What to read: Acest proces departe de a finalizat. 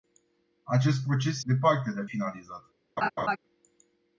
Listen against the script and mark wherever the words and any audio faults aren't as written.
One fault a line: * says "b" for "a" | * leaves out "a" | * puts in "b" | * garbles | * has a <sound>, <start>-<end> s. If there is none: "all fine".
* has a laugh, 3.0-3.4 s